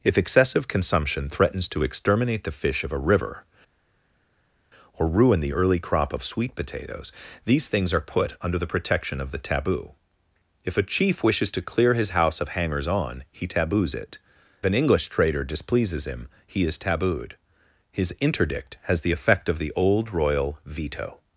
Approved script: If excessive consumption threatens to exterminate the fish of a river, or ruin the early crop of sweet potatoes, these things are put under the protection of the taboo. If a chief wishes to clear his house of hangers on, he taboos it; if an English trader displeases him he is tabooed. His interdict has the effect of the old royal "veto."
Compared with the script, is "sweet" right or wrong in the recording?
right